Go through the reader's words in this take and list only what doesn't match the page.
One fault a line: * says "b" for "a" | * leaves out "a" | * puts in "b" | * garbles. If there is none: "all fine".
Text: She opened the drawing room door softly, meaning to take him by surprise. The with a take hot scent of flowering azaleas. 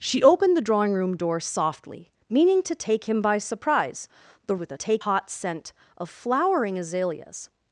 all fine